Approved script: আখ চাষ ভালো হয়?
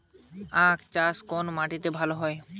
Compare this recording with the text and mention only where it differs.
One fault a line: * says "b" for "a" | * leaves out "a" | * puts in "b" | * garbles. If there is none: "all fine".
* puts in "কোন মাটিতে"